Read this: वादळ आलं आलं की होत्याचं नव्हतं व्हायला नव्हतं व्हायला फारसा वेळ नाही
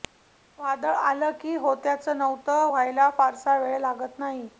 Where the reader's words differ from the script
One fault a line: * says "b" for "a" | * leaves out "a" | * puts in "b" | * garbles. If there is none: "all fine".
* leaves out "आलं"
* leaves out "नव्हतं व्हायला"
* puts in "लागत"